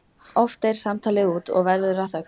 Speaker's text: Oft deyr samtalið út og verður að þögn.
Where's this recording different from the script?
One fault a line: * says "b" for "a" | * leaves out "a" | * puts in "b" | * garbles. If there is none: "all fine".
all fine